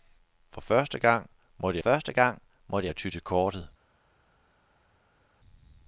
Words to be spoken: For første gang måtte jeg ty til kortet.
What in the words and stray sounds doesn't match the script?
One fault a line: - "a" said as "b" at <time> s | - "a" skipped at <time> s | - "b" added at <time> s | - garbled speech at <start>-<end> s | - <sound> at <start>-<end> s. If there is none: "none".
- "første gang måtte" added at 1.8 s